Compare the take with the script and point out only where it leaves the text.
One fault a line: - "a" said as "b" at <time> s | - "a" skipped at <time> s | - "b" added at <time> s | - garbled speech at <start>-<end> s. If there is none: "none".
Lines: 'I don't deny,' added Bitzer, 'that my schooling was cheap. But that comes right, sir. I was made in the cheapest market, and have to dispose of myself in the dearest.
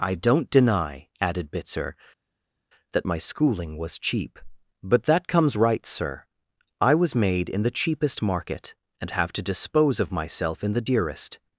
none